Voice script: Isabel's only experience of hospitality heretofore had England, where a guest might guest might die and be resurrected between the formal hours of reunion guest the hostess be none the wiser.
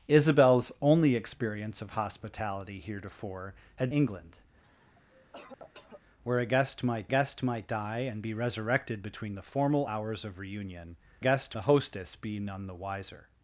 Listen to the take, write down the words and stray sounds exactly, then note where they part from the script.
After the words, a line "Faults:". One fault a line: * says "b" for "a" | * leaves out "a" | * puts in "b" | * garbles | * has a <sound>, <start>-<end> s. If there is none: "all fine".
Isabel's only experience of hospitality heretofore had England, where a guest might guest might die and be resurrected between the formal hours of reunion guest the hostess be none the wiser.
Faults:
* has a cough, 4.6-6.0 s